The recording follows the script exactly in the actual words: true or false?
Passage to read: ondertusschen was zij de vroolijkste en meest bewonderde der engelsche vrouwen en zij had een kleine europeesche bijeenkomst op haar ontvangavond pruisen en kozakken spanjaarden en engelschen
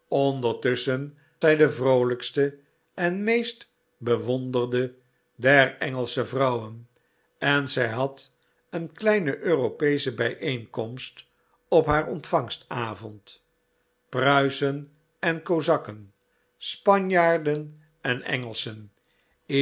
false